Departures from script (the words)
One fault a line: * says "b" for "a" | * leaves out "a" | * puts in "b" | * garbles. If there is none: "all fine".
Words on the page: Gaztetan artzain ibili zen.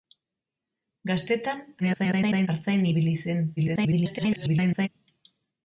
* garbles
* garbles